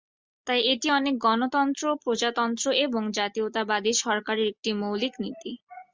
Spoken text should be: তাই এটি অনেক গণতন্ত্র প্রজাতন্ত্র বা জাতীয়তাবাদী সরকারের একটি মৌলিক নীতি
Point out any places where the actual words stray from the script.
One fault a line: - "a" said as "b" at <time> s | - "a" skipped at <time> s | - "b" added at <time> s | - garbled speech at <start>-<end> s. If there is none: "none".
- "বা" said as "এবং" at 2.8 s